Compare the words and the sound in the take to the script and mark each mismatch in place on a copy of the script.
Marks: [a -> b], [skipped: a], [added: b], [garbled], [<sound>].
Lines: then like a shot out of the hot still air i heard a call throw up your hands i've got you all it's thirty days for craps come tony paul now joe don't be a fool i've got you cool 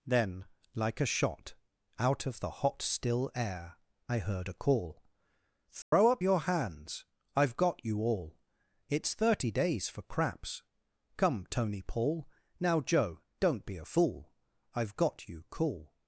then like a shot out of the hot still air i heard a call throw [dropout] up your hands i've got you all it's thirty days for craps come tony paul now joe don't be a fool i've got you cool